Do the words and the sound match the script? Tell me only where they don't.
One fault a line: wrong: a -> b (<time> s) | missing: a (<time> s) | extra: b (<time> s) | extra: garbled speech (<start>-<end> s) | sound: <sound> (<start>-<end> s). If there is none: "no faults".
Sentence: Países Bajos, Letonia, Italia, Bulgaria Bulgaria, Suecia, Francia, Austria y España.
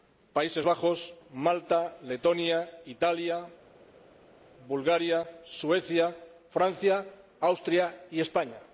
extra: Malta (1.3 s)
missing: Bulgaria (5.3 s)